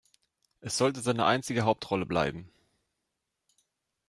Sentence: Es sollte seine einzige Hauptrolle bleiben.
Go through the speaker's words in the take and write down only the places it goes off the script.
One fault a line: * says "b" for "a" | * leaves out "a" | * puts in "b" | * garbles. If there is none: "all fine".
all fine